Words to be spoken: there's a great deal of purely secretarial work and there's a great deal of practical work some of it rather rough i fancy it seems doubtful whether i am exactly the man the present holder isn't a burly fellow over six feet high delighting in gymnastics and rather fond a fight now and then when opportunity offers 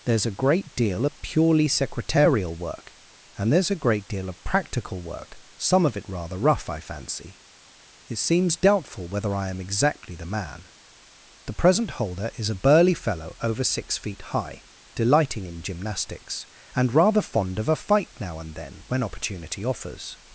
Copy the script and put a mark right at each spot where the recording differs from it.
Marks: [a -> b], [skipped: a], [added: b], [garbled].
there's a great deal of purely secretarial work and there's a great deal of practical work some of it rather rough i fancy it seems doubtful whether i am exactly the man the present holder [isn't -> is] a burly fellow over six feet high delighting in gymnastics and rather fond [added: of] a fight now and then when opportunity offers